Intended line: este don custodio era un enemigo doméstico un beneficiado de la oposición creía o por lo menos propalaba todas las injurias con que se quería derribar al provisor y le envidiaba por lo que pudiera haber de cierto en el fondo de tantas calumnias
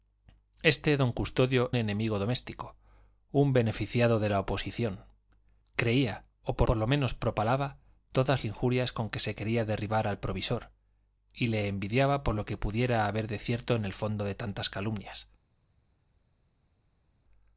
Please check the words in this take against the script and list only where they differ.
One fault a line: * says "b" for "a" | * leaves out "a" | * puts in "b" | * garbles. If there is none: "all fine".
* leaves out "era un"
* puts in "por"
* leaves out "las"